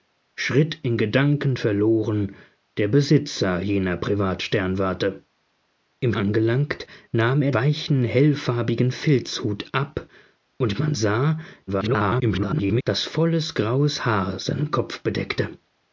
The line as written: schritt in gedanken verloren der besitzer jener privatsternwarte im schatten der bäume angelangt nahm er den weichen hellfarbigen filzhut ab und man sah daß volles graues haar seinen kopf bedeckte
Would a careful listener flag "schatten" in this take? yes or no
yes